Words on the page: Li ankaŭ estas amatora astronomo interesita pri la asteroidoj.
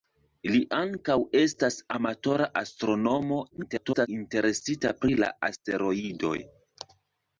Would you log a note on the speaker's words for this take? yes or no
yes